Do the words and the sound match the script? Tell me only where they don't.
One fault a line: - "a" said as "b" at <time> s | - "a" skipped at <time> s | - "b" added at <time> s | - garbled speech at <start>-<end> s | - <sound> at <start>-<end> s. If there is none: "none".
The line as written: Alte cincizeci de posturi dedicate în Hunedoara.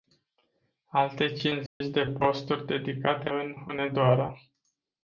- dropout at 1.7-1.8 s